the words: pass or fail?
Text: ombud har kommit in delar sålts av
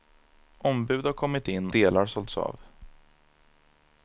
pass